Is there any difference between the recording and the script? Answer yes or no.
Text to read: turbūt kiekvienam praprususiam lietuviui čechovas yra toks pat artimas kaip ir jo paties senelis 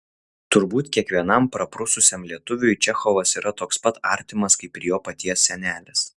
no